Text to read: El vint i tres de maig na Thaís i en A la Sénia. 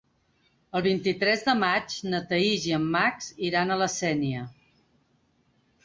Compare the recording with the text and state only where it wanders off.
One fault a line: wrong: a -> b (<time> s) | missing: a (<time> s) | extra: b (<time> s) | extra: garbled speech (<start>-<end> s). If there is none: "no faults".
extra: Max iran (3.0 s)